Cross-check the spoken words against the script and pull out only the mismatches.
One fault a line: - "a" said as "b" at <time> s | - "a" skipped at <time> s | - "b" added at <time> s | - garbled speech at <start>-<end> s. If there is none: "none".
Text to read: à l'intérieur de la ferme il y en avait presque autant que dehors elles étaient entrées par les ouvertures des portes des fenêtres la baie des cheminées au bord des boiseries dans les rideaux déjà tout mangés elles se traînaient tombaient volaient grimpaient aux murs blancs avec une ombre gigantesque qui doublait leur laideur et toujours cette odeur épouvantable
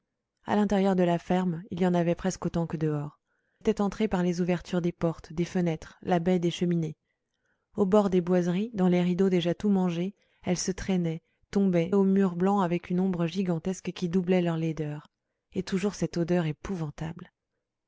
- "elles" skipped at 3.2 s
- "volaient grimpaient" skipped at 11.9 s